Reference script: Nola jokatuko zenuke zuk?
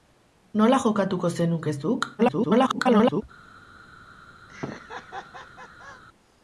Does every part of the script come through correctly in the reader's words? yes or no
no